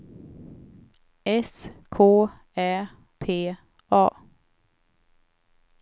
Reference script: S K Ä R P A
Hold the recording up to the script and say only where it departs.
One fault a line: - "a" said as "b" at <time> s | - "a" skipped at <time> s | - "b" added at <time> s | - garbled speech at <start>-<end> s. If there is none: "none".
- "R" skipped at 2.9 s